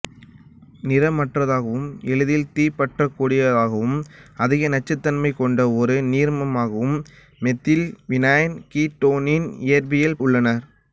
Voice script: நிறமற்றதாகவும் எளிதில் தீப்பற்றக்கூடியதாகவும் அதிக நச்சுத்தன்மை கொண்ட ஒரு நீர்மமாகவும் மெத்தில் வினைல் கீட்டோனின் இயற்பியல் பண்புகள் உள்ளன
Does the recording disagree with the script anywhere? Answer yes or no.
yes